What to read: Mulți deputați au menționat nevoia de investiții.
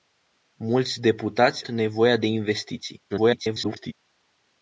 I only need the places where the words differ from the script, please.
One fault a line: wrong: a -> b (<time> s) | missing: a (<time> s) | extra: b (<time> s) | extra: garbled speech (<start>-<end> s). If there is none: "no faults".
missing: au menționat (1.6 s)
extra: garbled speech (3.1-3.9 s)